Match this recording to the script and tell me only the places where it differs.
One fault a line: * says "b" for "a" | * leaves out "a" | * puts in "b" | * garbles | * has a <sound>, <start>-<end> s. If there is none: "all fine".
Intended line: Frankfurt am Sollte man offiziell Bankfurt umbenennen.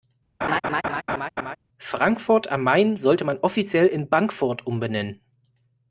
* has a laugh, 0.4-1.6 s
* puts in "Main"
* puts in "in"